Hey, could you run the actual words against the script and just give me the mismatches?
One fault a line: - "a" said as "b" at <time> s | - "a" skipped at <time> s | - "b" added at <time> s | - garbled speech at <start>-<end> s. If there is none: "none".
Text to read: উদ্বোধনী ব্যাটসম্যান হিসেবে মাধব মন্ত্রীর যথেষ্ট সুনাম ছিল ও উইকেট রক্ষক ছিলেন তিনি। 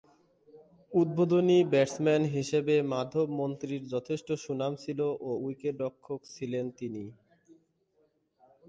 none